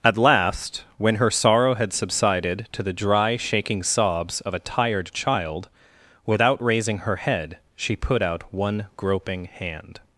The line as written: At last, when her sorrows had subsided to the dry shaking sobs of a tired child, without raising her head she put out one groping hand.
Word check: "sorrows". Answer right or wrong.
wrong